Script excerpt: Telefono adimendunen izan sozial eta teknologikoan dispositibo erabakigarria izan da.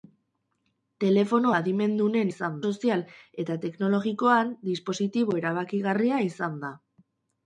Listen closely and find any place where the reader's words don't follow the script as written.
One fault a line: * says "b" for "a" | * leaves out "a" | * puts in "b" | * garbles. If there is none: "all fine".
all fine